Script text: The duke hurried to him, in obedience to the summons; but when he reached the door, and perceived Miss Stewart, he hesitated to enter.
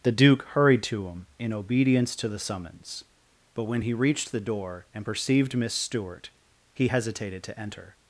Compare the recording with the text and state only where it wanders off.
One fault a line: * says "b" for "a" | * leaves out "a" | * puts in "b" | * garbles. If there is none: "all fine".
all fine